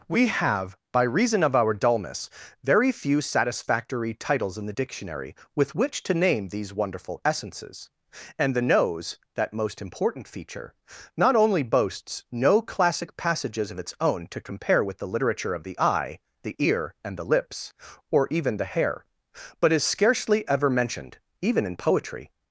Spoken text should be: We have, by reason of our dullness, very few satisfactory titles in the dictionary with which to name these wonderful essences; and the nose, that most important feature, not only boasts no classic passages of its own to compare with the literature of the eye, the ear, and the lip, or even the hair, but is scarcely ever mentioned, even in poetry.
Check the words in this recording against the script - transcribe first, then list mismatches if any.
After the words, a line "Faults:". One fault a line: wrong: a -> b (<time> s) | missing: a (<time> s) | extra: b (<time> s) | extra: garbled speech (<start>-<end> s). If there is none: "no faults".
We have, by reason of our dullness, very few satisfactory titles in the dictionary with which to name these wonderful essences; and the nose, that most important feature, not only boasts no classic passages of its own to compare with the literature of the eye, the ear, and the lips, or even the hair, but is scarcely ever mentioned, even in poetry.
Faults:
wrong: lip -> lips (17.2 s)